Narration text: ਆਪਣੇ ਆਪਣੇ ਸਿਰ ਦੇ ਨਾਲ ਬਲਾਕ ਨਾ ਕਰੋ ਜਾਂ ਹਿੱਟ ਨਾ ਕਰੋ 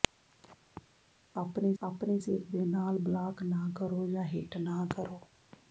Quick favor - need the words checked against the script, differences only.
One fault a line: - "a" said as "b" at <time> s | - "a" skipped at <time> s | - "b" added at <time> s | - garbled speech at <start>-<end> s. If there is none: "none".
none